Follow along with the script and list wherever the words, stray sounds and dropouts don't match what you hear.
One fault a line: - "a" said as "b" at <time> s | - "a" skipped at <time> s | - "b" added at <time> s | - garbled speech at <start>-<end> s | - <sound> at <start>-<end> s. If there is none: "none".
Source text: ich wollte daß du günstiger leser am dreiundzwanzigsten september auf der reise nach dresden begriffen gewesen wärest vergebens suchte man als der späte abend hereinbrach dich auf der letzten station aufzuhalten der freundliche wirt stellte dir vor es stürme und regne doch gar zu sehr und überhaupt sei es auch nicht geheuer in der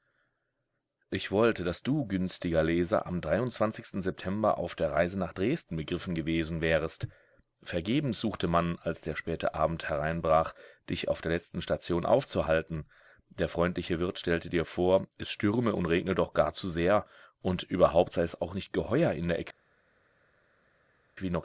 none